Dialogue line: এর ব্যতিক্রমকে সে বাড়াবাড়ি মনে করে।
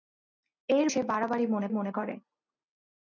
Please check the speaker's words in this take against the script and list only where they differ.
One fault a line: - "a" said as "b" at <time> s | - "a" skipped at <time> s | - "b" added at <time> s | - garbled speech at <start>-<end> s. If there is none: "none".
- "ব্যতিক্রমকে" skipped at 0.9 s
- "মনে" added at 1.7 s